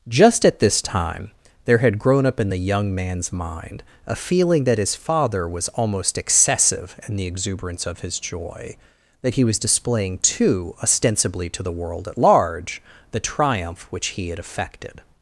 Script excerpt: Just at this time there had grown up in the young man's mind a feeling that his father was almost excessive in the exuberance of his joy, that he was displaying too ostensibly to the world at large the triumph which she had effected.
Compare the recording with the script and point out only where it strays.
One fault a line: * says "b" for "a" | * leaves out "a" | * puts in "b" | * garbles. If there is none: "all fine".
* says "he" for "she"